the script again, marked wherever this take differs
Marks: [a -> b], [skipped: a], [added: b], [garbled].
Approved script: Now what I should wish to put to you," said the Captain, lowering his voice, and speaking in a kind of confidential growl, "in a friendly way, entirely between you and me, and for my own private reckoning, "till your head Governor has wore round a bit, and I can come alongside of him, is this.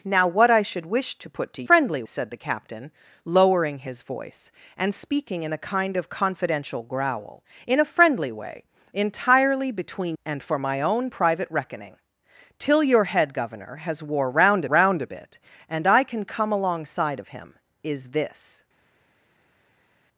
Now what I should wish to put to [you," -> friendly] said the Captain, lowering his voice, and speaking in a kind of confidential growl, "in a friendly way, entirely between [skipped: you] and [skipped: me, and] for my own private reckoning, "till your head Governor has wore round [added: round] a bit, and I can come alongside of him, is this.